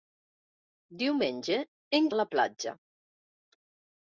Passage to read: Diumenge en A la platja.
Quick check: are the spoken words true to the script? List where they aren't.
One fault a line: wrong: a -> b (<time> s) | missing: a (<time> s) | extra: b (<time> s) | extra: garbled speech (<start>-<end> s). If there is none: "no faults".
no faults